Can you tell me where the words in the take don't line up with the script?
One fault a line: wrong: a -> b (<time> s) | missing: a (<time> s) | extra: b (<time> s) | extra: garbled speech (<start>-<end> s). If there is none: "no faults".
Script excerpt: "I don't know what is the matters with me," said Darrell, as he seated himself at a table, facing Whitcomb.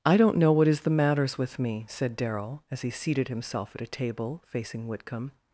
no faults